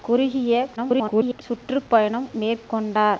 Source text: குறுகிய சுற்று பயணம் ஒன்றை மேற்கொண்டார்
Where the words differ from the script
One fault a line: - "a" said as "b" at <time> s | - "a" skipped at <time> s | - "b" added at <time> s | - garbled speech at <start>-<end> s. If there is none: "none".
- garbled speech at 0.8-1.4 s
- "ஒன்றை" skipped at 2.3 s